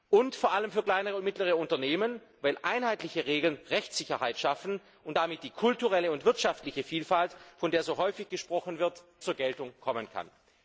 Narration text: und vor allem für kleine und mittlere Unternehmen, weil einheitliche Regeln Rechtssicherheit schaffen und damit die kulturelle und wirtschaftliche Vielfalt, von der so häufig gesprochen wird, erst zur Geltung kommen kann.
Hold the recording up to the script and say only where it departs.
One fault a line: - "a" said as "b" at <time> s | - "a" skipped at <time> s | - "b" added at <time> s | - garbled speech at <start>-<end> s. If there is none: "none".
- "erst" skipped at 9.0 s